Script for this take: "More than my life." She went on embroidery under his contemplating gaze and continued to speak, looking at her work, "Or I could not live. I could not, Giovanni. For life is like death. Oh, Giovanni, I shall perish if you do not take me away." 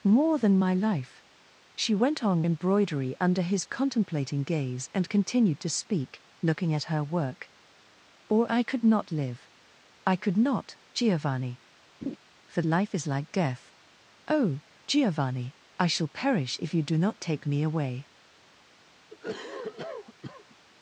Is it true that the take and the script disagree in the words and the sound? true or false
true